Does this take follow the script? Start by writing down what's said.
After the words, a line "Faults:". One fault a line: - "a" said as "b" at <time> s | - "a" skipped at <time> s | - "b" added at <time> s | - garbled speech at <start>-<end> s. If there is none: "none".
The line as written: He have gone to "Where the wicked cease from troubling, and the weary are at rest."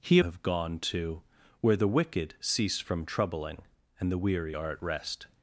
He have gone to "Where the wicked cease from troubling, and the weary are at rest."
Faults:
none